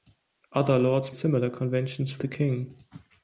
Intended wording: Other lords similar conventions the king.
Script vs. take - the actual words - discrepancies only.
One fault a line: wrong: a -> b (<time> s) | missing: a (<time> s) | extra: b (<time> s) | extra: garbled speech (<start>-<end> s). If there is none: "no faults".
no faults